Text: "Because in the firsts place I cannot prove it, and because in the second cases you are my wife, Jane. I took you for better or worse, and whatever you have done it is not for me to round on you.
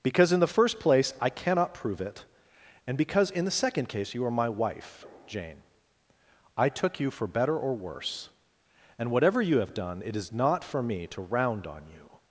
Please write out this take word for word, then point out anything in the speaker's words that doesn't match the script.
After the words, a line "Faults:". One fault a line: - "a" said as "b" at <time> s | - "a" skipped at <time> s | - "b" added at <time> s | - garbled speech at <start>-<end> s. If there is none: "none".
"Because in the first place I cannot prove it, and because in the second case you are my wife, Jane. I took you for better or worse, and whatever you have done it is not for me to round on you.
Faults:
- "firsts" said as "first" at 0.5 s
- "cases" said as "case" at 3.9 s